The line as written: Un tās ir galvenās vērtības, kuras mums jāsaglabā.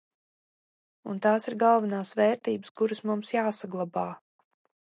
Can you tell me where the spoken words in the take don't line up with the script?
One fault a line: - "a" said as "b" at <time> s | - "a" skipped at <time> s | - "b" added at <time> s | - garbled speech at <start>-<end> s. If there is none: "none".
none